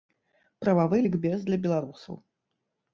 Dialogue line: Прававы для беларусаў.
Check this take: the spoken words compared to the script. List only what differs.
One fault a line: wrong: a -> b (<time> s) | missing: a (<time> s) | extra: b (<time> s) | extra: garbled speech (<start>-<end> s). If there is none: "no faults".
extra: лікбез (1.0 s)